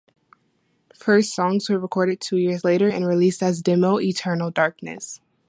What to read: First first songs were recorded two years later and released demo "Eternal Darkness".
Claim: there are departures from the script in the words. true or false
true